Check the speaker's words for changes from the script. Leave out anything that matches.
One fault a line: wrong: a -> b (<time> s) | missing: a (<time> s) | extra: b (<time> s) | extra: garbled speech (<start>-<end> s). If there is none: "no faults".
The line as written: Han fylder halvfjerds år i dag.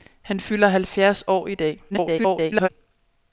extra: garbled speech (1.9-2.7 s)